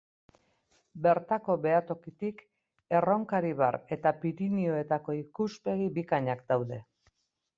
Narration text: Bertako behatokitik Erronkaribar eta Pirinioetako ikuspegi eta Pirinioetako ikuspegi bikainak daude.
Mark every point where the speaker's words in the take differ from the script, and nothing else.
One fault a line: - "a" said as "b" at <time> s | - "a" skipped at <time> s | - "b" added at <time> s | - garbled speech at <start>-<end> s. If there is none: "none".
- "eta Pirinioetako ikuspegi" skipped at 5.9 s